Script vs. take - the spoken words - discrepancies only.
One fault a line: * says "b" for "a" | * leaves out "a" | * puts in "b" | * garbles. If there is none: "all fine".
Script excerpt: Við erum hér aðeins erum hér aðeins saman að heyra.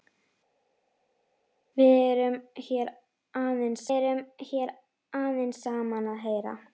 all fine